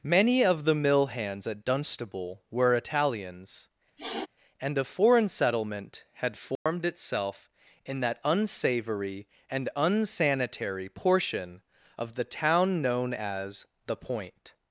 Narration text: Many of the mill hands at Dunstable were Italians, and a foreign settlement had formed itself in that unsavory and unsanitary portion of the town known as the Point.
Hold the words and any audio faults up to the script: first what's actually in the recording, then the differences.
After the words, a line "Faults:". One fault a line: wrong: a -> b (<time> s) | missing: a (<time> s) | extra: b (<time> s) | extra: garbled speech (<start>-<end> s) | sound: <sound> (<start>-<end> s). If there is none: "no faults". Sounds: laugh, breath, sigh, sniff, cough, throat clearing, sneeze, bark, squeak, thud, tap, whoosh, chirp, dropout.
Many of the mill hands at Dunstable were Italians, and a foreign settlement had formed itself in that unsavory and unsanitary portion of the town known as the Point.
Faults:
sound: sniff (4.0-4.3 s)
sound: dropout (6.6-6.7 s)